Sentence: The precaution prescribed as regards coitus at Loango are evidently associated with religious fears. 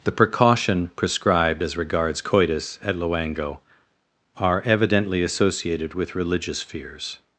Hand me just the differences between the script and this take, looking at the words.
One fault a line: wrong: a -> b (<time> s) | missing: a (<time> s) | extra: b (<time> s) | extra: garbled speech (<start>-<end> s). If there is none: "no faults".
no faults